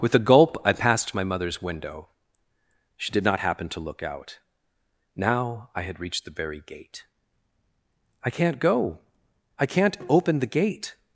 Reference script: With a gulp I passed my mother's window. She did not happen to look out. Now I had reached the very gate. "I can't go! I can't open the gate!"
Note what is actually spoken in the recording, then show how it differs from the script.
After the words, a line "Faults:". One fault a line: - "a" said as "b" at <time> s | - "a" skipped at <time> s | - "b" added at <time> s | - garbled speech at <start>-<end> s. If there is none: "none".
With a gulp I passed my mother's window. She did not happen to look out. Now I had reached the very gate. "I can't go! I can't open the gate!"
Faults:
none